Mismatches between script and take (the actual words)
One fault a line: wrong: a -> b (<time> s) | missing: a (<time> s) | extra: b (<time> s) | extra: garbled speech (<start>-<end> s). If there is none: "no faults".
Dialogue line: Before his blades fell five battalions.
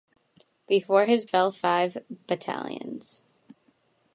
missing: blades (1.2 s)